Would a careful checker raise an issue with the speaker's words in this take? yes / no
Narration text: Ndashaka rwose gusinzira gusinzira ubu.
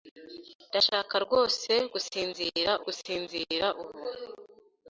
no